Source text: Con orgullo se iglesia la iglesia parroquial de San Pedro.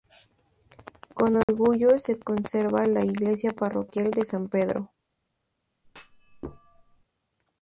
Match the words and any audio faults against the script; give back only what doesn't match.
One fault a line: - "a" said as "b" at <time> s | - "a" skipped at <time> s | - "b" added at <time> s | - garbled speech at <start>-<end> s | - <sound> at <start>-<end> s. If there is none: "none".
- dropout at 1.4-1.5 s
- "iglesia" said as "conserva" at 2.2 s
- thud at 5.8-7.0 s